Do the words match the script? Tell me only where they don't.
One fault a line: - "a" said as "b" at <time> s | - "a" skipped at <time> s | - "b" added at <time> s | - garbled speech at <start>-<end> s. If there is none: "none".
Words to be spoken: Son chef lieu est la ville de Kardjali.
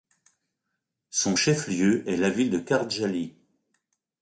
none